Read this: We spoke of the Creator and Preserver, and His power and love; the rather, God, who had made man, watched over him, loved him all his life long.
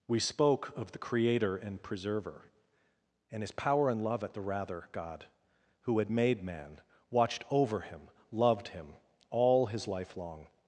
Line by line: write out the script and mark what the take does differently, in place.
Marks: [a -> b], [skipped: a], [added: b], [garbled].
We spoke of the Creator and Preserver, and His power and love; [added: at] the rather, God, who had made man, watched over him, loved him all his life long.